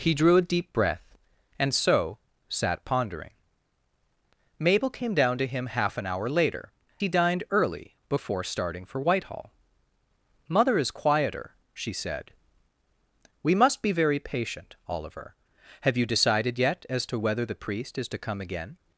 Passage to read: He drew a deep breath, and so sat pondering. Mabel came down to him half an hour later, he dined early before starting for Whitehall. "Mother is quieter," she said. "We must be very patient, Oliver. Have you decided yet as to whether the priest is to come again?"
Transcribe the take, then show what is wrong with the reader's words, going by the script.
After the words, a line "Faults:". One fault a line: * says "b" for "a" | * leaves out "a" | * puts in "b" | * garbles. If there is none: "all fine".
He drew a deep breath, and so sat pondering. Mabel came down to him half an hour later, he dined early before starting for Whitehall. "Mother is quieter," she said. "We must be very patient, Oliver. Have you decided yet as to whether the priest is to come again?"
Faults:
all fine